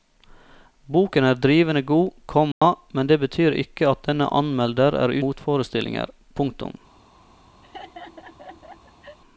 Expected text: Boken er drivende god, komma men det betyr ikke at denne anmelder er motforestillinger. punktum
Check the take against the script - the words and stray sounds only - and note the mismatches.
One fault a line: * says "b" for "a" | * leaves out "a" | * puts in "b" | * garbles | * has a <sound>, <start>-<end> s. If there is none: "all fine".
* has a dropout, 2.5-2.6 s
* has a laugh, 7.6-9.2 s